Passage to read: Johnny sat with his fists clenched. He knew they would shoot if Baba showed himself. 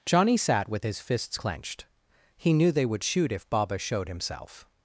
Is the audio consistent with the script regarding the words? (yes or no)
yes